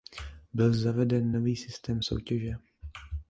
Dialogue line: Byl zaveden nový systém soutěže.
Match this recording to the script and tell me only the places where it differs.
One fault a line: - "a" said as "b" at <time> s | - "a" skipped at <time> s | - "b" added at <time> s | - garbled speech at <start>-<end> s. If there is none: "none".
none